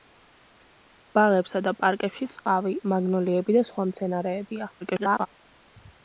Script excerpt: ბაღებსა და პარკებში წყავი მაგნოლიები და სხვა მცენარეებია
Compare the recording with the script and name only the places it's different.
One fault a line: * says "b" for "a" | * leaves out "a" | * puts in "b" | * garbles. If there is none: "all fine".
* garbles